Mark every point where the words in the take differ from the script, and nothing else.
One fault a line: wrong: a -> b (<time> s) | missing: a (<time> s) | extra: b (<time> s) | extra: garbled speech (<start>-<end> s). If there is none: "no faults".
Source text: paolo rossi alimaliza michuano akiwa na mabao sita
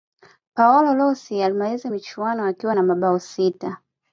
no faults